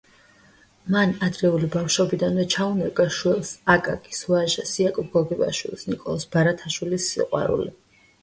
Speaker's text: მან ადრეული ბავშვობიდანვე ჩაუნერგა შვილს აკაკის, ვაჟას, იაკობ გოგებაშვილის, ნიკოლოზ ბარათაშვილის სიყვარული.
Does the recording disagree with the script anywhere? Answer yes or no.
no